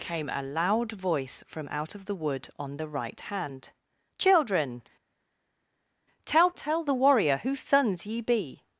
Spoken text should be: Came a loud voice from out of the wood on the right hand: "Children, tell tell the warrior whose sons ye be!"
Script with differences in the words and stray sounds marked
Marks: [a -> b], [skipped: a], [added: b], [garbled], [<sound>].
Came a loud voice from out of the wood on the right hand: "Children, tell tell the warrior whose sons ye be!"